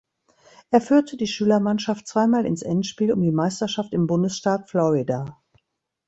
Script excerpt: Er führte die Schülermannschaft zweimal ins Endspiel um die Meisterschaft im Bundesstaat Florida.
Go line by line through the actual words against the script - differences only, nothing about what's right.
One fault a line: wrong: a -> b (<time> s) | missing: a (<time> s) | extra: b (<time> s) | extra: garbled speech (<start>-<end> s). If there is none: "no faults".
no faults